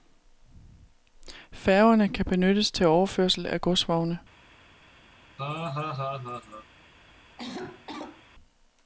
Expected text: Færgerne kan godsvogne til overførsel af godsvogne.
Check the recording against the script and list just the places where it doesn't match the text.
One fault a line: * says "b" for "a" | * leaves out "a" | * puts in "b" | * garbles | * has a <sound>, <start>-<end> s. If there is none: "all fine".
* says "benyttes" for "godsvogne"
* has a laugh, 5.4-6.7 s
* has a cough, 7.4-8.2 s